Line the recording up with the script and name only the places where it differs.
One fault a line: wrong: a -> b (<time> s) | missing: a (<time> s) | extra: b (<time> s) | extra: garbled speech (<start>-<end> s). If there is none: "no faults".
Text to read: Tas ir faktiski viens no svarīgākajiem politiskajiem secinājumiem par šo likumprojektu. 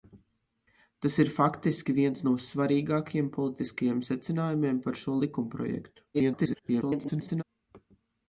extra: garbled speech (6.1-7.4 s)